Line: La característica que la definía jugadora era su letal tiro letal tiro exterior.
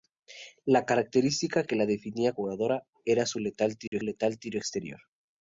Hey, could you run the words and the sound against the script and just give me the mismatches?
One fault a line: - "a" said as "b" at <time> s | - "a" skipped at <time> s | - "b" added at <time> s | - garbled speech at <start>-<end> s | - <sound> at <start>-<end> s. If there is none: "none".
- dropout at 3.9-3.9 s